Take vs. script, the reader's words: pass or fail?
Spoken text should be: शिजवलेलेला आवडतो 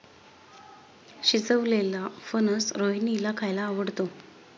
fail